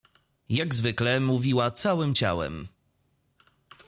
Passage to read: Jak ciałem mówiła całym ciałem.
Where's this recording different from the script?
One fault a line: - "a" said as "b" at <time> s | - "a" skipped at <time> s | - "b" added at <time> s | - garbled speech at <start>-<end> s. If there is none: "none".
- "ciałem" said as "zwykle" at 0.7 s